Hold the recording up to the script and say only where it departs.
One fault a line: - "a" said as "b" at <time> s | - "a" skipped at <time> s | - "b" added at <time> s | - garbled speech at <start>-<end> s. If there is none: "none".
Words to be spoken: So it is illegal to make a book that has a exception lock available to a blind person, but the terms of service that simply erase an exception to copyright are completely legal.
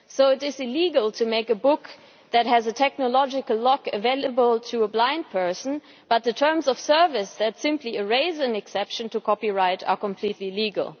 - "exception" said as "technological" at 2.7 s